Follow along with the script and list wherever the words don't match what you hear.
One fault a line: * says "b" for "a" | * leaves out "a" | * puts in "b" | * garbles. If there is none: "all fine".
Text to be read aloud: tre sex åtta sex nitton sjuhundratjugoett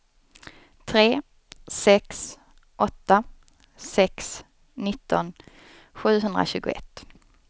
all fine